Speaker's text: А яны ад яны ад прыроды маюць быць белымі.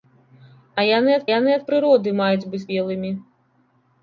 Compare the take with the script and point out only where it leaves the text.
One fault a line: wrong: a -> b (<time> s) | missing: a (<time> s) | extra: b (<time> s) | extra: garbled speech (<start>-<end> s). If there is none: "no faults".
no faults